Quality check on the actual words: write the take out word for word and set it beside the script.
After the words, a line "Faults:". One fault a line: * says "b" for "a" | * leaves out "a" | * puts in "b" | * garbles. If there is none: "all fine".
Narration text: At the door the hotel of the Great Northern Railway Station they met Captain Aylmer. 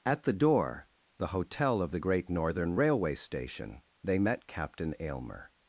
At the door the hotel of the Great Northern Railway Station they met Captain Aylmer.
Faults:
all fine